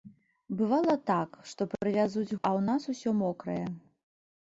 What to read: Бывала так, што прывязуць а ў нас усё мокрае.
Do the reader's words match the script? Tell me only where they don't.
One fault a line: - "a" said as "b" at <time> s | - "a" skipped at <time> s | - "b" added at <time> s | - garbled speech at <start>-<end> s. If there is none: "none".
none